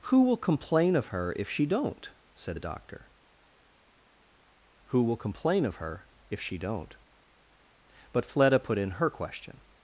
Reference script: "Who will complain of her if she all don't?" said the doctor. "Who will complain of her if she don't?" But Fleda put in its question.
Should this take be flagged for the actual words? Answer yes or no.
yes